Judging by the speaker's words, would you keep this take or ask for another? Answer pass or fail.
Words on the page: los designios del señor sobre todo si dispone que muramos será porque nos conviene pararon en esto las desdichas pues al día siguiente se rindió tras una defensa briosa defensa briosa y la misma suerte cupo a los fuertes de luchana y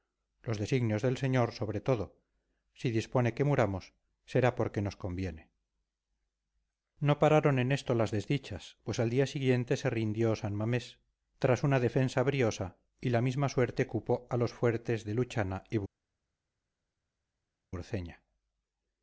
fail